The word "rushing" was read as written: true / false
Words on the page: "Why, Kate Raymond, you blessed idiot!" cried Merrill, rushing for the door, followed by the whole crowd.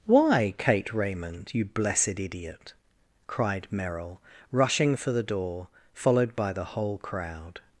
true